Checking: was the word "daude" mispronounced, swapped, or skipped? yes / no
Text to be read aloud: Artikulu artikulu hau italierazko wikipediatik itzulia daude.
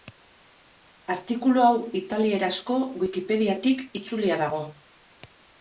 yes